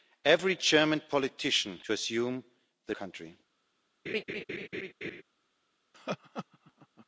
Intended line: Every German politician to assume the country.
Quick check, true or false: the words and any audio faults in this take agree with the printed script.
false